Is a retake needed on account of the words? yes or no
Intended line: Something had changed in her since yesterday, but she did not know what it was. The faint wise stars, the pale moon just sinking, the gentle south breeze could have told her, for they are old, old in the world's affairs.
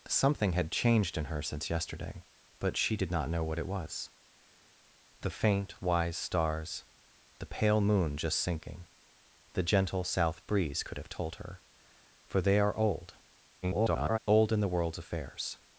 yes